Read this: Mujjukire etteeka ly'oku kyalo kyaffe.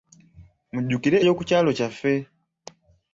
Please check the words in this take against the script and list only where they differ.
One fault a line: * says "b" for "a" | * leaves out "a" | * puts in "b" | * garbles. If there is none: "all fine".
* leaves out "etteeka"